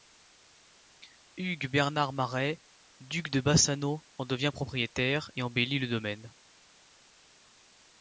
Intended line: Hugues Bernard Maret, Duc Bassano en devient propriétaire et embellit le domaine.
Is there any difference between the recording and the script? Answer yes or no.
yes